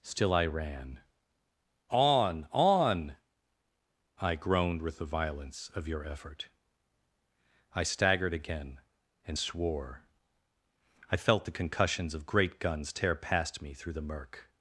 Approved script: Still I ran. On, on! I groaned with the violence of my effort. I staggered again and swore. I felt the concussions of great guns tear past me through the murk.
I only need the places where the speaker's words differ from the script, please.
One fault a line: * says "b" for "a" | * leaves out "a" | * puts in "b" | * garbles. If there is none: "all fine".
* says "your" for "my"